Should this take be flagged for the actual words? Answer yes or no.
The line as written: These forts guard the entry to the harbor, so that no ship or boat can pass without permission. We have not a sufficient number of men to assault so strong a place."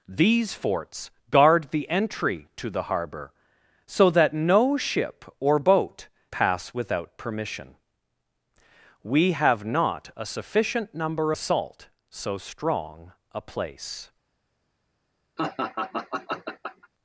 yes